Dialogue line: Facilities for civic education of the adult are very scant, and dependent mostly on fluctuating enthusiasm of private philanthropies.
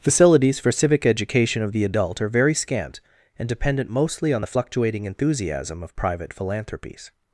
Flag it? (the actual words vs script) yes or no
yes